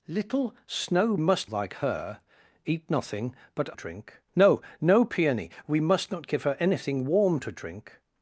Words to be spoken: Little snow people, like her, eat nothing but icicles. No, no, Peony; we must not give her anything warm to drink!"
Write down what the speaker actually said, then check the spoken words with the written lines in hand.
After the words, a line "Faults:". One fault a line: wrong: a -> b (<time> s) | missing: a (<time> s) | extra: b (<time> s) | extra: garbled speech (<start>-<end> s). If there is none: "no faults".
Little snow must, like her, eat nothing but drink. No, no, Peony; we must not give her anything warm to drink!"
Faults:
wrong: people -> must (1.2 s)
wrong: icicles -> drink (3.7 s)